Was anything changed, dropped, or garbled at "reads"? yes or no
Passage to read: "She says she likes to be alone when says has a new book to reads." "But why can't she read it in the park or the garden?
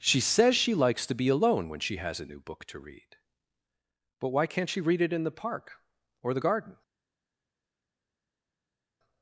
yes